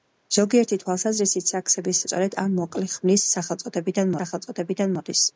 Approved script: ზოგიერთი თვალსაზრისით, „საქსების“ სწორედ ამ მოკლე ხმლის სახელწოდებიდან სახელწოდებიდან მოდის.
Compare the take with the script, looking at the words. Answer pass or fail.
pass